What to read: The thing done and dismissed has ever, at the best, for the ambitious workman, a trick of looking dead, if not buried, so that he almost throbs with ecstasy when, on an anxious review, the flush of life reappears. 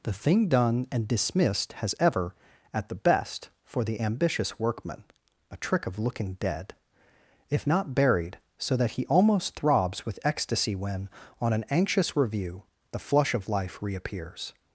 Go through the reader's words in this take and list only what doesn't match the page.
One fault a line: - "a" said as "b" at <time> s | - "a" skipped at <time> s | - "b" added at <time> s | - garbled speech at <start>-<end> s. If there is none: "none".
none